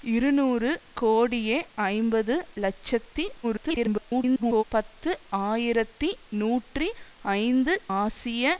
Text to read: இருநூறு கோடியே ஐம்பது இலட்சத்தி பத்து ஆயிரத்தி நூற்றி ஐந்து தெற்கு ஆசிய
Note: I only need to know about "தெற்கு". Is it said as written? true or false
false